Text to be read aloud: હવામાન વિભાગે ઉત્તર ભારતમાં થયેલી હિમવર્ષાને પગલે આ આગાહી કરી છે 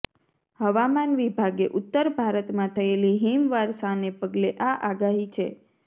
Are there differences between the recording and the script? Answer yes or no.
yes